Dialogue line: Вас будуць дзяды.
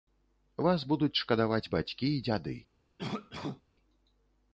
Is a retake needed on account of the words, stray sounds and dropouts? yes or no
yes